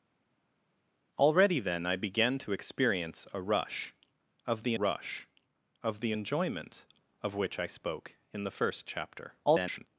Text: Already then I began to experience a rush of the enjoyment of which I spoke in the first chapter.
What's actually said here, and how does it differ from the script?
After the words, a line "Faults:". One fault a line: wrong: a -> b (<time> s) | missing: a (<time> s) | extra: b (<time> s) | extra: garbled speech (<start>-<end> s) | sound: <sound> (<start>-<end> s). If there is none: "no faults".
Already then I began to experience a rush of the rush of the enjoyment of which I spoke in the first chapter. [garbled]
Faults:
extra: rush of the (4.7 s)
extra: garbled speech (9.4-9.9 s)